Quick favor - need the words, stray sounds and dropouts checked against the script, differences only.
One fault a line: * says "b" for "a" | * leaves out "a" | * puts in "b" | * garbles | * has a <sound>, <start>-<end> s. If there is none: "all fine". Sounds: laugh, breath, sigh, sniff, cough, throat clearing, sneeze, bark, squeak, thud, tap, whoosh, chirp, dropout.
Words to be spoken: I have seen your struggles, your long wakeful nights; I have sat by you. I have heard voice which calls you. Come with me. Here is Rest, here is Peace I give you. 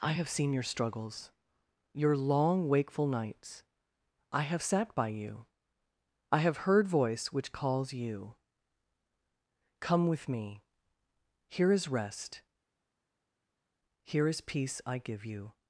all fine